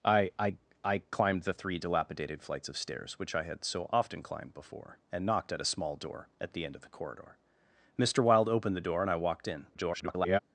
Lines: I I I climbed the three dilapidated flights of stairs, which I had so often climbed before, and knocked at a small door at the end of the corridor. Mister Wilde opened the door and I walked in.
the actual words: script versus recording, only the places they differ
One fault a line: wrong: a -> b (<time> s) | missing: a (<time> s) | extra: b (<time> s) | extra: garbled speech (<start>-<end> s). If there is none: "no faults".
extra: garbled speech (9.7-10.4 s)